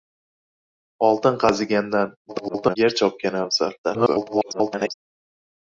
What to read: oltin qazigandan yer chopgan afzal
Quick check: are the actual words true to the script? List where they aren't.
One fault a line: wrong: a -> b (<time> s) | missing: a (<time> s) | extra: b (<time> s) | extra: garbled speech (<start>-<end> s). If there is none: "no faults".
extra: garbled speech (2.3-2.8 s)
extra: garbled speech (3.8-4.9 s)